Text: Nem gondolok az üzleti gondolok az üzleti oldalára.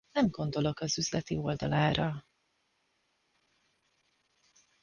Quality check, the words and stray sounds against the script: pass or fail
fail